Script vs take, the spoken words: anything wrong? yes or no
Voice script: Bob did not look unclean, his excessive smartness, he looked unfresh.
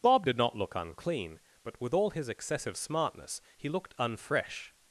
yes